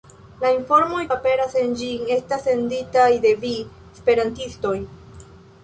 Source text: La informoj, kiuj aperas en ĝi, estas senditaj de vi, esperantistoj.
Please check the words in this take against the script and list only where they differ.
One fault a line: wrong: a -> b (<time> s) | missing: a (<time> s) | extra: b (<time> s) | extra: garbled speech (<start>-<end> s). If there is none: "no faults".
missing: kiuj (1.0 s)